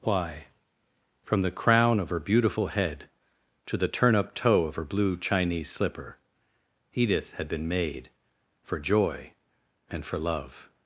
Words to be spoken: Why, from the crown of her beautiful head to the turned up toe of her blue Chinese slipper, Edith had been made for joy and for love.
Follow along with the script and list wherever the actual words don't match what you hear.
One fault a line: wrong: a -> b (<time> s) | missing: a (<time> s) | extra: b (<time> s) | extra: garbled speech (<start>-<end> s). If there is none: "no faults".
wrong: turned -> turn (3.9 s)